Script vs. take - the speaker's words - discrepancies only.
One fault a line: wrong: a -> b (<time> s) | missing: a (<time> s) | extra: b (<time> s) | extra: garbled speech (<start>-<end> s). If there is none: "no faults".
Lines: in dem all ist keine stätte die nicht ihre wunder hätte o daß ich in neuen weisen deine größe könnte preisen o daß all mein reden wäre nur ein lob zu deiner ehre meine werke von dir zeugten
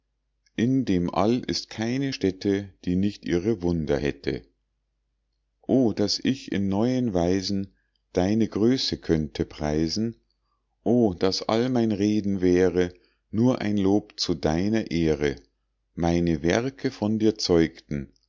no faults